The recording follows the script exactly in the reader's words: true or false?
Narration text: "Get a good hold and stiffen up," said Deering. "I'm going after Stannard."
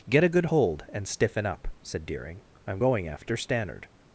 true